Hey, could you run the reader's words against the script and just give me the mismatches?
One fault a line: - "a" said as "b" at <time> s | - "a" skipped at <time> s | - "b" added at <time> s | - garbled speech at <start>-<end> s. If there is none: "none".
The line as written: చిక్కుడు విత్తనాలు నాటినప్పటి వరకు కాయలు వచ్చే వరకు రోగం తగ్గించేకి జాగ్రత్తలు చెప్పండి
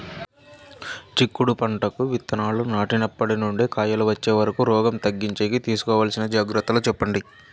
- "పంటకు" added at 1.5 s
- "వరకు" said as "నుండి" at 3.4 s
- "తీసుకోవాల్సిన" added at 5.7 s